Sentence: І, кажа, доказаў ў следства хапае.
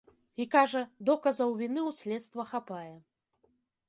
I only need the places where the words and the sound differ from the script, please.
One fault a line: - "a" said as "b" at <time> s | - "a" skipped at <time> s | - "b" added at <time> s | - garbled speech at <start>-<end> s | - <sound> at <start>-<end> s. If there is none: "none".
- "віны" added at 1.6 s